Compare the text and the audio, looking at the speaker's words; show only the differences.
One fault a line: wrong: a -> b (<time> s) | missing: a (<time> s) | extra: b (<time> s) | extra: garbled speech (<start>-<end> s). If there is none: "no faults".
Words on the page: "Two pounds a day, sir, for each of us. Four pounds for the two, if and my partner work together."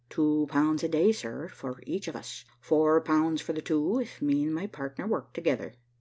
extra: me (4.2 s)